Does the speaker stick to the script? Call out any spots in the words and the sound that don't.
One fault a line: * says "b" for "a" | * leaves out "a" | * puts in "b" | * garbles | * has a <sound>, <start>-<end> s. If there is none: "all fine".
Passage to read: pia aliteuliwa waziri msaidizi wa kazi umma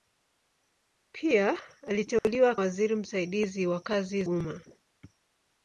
* has a dropout, 2.2-2.2 s